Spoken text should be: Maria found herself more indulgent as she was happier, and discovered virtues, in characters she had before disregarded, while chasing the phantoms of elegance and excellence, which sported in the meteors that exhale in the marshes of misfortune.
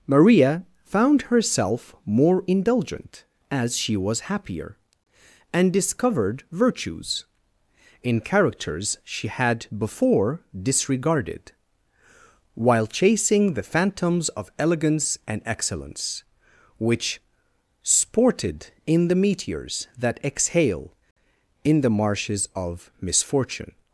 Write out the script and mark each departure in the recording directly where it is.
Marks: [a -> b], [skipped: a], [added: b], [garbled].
Maria found herself more indulgent as she was happier, and discovered virtues, in characters she had before disregarded, while chasing the phantoms of elegance and excellence, which sported in the meteors that exhale in the marshes of misfortune.